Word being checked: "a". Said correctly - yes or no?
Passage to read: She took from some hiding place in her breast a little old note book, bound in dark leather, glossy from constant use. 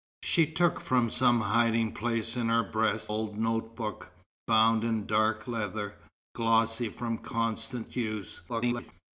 no